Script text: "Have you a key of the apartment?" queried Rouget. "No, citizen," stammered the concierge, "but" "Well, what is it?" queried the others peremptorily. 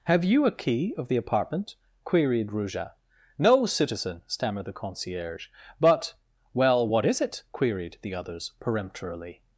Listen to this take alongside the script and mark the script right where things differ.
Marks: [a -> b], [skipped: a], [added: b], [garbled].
"Have you a key of the apartment?" queried Rouget. "No, citizen," stammered the concierge, "but" "Well, what is it?" queried the others peremptorily.